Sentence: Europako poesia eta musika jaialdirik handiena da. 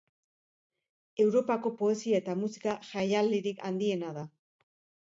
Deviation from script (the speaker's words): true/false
false